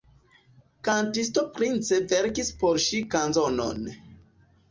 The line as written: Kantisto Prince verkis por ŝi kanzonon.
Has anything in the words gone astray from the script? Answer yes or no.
no